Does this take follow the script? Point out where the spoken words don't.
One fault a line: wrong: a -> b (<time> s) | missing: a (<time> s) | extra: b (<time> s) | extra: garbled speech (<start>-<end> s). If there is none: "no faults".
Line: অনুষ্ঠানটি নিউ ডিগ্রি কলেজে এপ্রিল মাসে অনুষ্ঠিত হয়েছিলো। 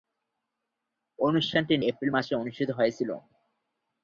missing: নিউ ডিগ্রি কলেজে (1.8 s)